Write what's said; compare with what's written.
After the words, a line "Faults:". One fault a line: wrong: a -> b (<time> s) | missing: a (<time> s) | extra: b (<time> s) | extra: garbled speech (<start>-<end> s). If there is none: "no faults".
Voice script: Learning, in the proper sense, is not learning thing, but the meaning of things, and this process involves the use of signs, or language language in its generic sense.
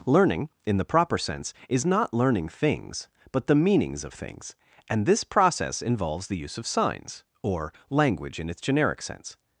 Learning, in the proper sense, is not learning things, but the meanings of things, and this process involves the use of signs, or language in its generic sense.
Faults:
wrong: thing -> things (2.5 s)
wrong: meaning -> meanings (3.5 s)
missing: language (8.4 s)